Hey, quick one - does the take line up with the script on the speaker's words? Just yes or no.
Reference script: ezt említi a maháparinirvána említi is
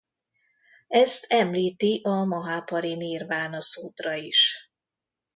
no